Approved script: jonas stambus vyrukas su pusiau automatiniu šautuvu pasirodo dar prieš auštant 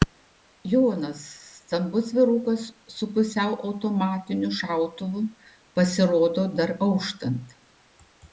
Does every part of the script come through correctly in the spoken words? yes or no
no